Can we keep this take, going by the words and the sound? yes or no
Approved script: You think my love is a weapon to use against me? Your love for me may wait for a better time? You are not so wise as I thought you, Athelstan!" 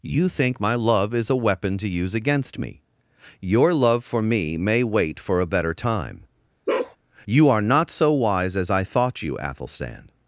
no